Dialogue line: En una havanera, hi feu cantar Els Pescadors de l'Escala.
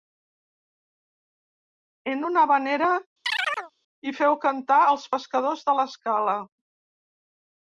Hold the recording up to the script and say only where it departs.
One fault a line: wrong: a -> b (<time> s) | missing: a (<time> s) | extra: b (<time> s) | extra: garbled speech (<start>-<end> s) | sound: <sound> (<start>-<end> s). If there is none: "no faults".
sound: chirp (3.2-3.7 s)